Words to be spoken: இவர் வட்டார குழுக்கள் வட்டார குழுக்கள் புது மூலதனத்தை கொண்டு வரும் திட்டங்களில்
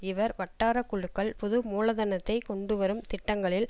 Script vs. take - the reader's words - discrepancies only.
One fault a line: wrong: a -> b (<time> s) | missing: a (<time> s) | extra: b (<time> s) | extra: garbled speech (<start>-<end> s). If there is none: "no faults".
missing: வட்டார குழுக்கள் (1.4 s)